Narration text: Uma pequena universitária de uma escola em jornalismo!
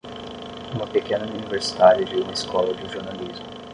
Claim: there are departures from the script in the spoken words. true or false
true